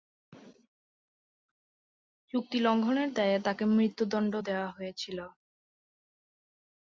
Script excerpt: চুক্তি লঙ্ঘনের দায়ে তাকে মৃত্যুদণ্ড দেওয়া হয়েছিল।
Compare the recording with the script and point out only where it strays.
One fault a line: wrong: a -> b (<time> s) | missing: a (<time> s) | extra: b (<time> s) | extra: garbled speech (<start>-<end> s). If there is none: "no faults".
no faults